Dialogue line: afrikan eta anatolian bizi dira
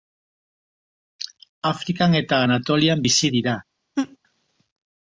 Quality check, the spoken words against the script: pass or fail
pass